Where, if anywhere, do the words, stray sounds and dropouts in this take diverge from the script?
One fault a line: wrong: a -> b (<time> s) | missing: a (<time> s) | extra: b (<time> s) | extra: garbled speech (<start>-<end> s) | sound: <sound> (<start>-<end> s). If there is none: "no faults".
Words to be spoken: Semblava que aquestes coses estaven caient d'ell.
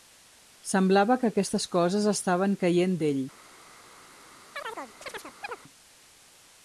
sound: chirp (4.5-5.6 s)